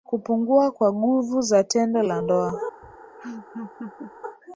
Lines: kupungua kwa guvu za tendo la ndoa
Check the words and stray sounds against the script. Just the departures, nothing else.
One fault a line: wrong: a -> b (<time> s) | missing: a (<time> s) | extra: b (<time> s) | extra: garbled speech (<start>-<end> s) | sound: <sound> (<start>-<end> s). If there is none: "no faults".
sound: laugh (2.8-4.1 s)